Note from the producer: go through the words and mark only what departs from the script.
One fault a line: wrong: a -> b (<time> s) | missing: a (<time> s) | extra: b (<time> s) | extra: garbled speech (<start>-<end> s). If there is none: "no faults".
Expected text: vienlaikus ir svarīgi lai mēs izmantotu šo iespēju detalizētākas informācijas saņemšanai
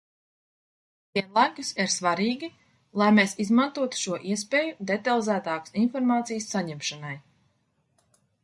no faults